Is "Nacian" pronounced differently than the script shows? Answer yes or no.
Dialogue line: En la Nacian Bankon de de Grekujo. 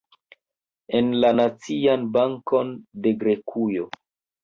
no